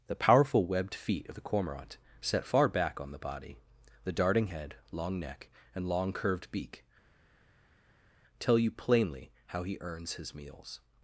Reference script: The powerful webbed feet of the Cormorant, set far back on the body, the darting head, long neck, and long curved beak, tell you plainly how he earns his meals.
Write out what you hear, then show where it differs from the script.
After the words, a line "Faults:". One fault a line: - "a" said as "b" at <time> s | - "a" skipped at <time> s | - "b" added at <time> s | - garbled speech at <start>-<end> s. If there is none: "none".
The powerful webbed feet of the Cormorant, set far back on the body, the darting head, long neck, and long curved beak, tell you plainly how he earns his meals.
Faults:
none